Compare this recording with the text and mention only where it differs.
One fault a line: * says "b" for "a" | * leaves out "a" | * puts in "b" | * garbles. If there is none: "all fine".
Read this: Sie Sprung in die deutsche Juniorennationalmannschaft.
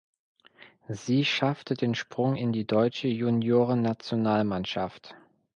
* puts in "schaffte den"